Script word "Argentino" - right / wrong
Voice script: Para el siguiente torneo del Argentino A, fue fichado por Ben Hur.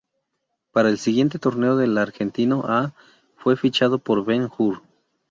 right